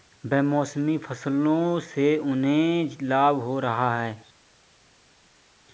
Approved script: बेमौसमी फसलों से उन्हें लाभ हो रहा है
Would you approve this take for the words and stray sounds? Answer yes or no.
yes